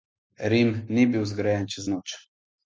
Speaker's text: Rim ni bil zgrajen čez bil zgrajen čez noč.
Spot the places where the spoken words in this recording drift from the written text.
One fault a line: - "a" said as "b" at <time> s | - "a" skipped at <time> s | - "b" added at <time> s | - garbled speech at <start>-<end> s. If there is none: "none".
- "bil zgrajen čez" skipped at 1.9 s